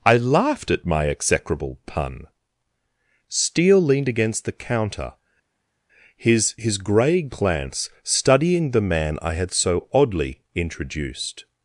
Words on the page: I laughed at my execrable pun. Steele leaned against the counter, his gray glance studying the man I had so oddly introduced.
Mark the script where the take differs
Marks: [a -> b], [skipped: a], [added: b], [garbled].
I laughed at my execrable pun. Steele leaned against the counter, his [added: his] gray glance studying the man I had so oddly introduced.